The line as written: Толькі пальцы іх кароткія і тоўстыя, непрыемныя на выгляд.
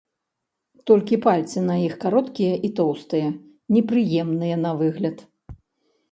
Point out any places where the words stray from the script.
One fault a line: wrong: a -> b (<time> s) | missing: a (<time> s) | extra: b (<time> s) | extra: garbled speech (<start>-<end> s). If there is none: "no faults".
extra: на (1.6 s)